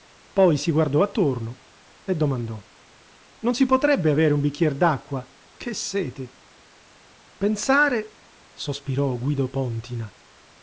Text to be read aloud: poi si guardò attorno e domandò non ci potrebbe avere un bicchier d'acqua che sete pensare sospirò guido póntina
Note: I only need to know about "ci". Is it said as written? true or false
false